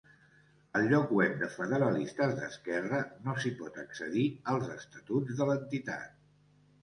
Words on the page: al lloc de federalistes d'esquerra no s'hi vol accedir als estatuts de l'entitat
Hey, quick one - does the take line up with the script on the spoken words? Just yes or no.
no